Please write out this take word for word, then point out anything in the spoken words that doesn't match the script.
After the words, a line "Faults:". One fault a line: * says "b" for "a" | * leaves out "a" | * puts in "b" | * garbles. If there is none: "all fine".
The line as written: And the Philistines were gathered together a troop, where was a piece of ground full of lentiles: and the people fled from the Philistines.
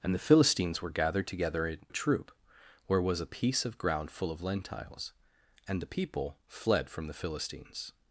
And the Philistines were gathered together a troop, where was a piece of ground full of lentiles: and the people fled from the Philistines.
Faults:
all fine